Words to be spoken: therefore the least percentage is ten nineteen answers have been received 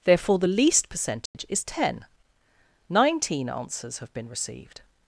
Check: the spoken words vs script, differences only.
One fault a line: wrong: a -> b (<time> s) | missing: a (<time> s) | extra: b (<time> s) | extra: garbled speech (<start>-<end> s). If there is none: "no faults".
no faults